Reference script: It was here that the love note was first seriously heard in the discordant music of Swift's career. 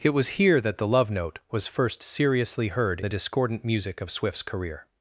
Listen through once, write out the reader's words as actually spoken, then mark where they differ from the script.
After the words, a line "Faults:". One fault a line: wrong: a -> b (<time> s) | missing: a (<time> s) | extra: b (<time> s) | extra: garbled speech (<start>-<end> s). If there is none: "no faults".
It was here that the love note was first seriously heard the discordant music of Swift's career.
Faults:
missing: in (3.0 s)